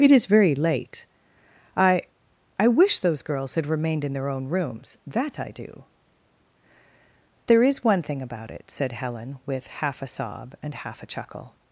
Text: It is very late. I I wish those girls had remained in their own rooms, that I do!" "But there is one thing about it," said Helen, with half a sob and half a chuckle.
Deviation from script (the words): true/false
true